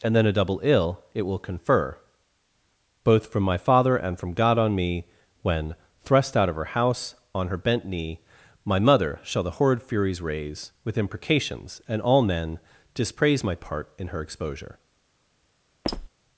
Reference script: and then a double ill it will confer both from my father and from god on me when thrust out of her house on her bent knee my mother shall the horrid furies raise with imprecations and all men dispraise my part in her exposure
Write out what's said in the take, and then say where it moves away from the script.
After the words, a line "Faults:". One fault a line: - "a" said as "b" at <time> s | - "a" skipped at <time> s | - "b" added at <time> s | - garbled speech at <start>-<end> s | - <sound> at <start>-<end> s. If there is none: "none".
and then a double ill it will confer both from my father and from god on me when thrust out of her house on her bent knee my mother shall the horrid furies raise with imprecations and all men dispraise my part in her exposure
Faults:
- squeak at 15.8-16.1 s